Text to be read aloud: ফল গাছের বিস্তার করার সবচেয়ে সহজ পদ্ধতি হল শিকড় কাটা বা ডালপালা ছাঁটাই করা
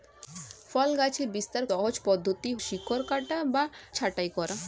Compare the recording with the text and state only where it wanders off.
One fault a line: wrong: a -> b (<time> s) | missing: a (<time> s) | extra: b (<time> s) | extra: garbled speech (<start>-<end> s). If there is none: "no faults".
missing: করার সবচেয়ে (1.6 s)
missing: হল (2.5 s)
missing: ডালপালা (3.6 s)